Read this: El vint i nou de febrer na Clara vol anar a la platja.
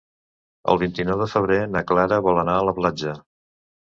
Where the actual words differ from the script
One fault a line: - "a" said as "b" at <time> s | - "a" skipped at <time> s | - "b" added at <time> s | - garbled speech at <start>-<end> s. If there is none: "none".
none